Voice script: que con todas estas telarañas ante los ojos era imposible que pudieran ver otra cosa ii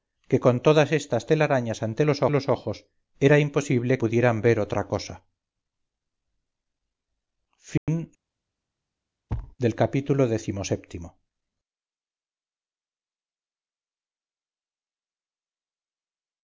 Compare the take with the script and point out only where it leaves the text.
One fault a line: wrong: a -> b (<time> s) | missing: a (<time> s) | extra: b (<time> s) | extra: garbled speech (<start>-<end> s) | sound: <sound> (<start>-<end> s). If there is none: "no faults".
extra: los (2.3 s)
missing: que (4.0 s)
sound: dropout (7.8-7.9 s)
sound: thud (9.3-9.6 s)